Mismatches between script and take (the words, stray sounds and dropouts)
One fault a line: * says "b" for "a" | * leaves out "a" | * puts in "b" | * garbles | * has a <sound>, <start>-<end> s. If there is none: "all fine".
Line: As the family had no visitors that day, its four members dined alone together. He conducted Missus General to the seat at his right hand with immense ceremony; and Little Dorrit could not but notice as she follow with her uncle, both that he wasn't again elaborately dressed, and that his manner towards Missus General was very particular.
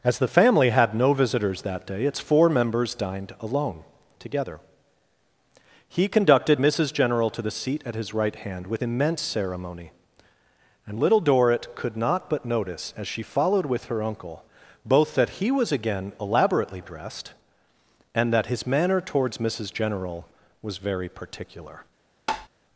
* says "followed" for "follow"
* says "was" for "wasn't"
* has a tap, 22.3-22.5 s